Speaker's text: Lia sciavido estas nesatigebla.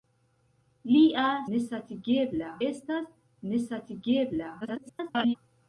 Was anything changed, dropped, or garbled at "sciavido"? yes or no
yes